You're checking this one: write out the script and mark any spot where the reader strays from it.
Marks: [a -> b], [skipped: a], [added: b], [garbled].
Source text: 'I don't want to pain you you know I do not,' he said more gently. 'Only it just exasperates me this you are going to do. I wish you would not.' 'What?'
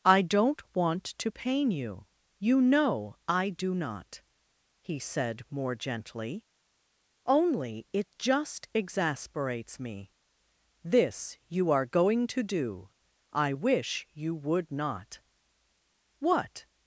'I don't want to pain you you know I do not,' he said more gently. 'Only it just exasperates me this you are going to do. I wish you would not.' 'What?'